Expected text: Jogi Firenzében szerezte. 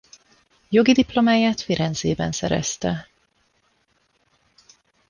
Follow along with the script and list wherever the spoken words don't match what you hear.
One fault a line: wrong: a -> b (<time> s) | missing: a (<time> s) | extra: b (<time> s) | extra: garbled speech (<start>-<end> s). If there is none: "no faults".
extra: diplomáját (0.9 s)